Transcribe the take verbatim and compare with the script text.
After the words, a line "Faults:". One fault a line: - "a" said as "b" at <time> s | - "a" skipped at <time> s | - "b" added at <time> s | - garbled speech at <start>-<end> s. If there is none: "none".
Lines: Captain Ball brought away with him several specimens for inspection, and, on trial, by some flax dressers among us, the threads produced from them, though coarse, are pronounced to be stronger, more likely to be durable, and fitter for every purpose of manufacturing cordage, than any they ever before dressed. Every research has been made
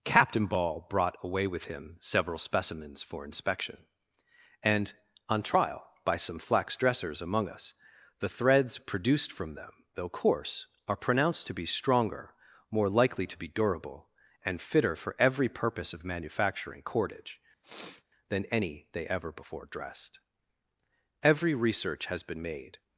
Captain Ball brought away with him several specimens for inspection, and, on trial, by some flax dressers among us, the threads produced from them, though coarse, are pronounced to be stronger, more likely to be durable, and fitter for every purpose of manufacturing cordage, than any they ever before dressed. Every research has been made
Faults:
none